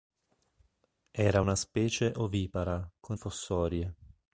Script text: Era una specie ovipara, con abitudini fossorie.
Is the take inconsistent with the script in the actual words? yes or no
yes